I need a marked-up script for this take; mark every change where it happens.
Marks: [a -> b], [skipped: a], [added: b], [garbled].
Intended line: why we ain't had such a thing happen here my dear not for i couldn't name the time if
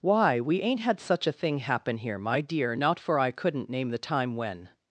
why we ain't had such a thing happen here my dear not for i couldn't name the time [if -> when]